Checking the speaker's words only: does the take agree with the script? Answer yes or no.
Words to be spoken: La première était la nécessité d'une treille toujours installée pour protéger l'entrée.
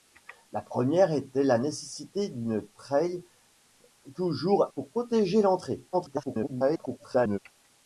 no